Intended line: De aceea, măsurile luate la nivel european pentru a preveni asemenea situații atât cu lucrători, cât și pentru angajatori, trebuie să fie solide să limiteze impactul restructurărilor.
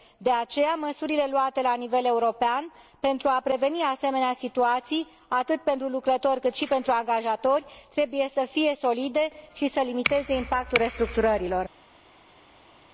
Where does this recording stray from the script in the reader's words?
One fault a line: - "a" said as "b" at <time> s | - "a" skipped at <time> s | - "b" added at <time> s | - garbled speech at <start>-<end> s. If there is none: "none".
- "cu" said as "pentru" at 5.6 s
- "și" added at 9.5 s